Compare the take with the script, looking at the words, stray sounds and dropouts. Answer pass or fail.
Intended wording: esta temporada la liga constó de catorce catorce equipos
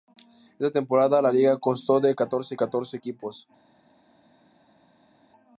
pass